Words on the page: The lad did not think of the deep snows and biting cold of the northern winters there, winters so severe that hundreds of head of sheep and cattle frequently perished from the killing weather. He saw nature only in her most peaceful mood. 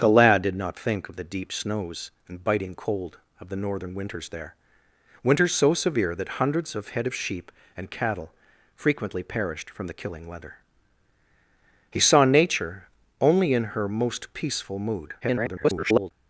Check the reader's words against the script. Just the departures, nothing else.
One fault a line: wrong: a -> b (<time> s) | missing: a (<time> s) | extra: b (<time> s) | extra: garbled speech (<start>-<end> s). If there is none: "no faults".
extra: garbled speech (15.2-16.1 s)